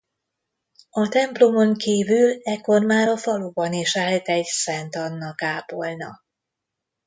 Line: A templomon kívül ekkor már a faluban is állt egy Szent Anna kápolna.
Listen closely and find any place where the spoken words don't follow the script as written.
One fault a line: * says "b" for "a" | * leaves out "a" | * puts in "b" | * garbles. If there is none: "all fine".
all fine